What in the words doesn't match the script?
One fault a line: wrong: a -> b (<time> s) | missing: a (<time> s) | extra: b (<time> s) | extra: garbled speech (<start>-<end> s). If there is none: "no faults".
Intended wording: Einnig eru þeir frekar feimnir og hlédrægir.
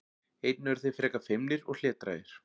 no faults